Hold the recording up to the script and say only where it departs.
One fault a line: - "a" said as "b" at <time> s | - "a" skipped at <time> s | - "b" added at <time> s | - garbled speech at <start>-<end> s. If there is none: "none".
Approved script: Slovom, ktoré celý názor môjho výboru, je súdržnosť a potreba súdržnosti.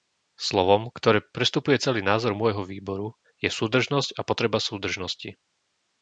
- "prestupuje" added at 1.2 s